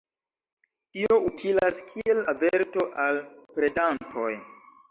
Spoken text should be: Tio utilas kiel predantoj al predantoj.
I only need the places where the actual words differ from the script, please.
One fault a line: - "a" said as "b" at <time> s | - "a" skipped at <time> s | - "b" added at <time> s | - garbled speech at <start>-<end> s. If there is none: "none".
- "predantoj" said as "averto" at 2.3 s